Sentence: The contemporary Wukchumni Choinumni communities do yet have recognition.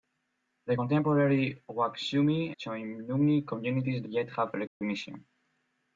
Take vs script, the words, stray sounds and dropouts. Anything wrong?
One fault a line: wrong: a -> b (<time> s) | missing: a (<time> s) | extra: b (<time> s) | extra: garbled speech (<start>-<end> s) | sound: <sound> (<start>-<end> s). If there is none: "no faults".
sound: dropout (4.7-4.8 s)